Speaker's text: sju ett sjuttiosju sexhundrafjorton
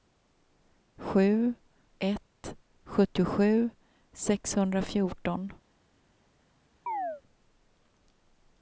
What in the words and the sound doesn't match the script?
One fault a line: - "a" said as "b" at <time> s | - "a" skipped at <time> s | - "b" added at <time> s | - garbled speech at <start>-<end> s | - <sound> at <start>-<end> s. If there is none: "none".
- chirp at 6.9-7.2 s